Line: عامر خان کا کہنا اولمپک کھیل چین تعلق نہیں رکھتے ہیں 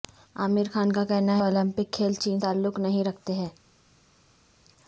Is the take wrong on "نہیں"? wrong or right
right